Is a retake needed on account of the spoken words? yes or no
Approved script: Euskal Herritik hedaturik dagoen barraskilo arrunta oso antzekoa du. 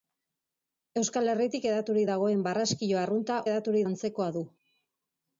yes